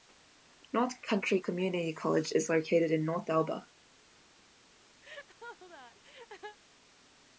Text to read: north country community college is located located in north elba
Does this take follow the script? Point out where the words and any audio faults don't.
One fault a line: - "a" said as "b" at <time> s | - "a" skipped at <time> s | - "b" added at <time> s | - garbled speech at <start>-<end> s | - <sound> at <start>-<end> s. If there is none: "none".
- "located" skipped at 2.9 s
- laugh at 5.0-6.6 s